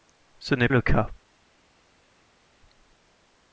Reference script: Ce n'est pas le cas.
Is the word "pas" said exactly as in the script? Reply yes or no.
no